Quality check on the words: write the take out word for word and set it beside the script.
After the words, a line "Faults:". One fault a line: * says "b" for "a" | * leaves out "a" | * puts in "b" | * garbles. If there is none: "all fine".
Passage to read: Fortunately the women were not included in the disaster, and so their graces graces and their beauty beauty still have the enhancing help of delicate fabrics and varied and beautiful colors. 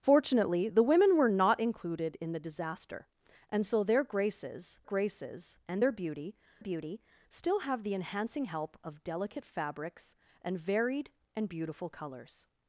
Fortunately the women were not included in the disaster, and so their graces graces and their beauty beauty still have the enhancing help of delicate fabrics and varied and beautiful colors.
Faults:
all fine